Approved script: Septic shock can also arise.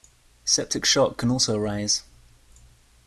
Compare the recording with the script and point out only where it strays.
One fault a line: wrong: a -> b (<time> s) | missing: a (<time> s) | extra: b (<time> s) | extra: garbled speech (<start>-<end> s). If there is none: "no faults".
no faults